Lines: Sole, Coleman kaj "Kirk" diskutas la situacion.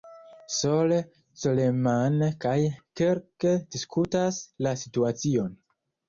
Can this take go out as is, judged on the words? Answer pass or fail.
pass